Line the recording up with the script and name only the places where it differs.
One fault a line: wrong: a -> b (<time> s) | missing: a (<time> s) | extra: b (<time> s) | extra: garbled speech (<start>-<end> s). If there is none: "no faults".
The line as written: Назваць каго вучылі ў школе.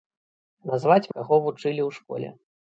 no faults